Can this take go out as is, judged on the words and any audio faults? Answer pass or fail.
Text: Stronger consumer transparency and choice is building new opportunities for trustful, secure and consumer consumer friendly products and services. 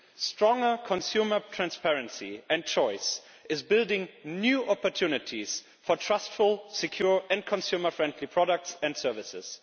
fail